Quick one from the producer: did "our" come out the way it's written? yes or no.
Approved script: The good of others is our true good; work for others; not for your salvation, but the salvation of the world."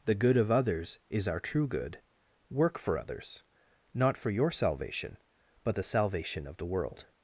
yes